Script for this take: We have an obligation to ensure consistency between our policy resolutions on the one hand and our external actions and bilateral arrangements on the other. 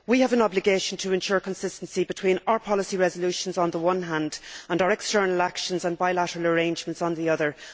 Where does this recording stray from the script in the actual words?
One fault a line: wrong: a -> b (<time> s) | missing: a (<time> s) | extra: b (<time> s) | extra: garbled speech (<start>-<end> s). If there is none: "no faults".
no faults